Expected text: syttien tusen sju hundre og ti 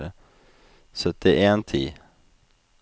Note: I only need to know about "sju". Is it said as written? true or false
false